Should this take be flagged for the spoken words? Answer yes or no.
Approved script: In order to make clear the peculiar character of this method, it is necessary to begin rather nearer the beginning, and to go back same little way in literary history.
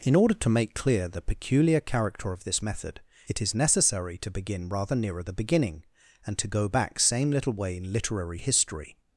no